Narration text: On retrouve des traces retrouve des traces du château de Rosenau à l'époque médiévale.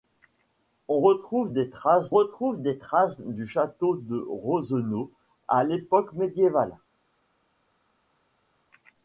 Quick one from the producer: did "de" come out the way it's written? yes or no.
yes